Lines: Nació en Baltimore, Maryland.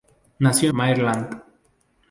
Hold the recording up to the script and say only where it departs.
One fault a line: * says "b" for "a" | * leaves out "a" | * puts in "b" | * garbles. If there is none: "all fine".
* leaves out "en Baltimore"